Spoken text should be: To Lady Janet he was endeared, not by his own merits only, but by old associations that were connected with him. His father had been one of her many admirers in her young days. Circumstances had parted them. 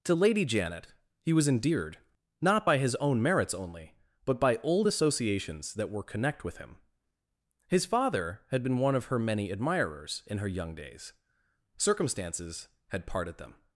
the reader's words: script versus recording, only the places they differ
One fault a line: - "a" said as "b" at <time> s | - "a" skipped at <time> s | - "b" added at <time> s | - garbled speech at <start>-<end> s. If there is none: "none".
- "connected" said as "connect" at 6.0 s